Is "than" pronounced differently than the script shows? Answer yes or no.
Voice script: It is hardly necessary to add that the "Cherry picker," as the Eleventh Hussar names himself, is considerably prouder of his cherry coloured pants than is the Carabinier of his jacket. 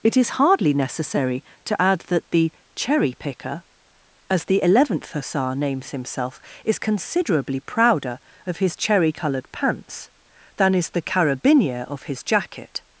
no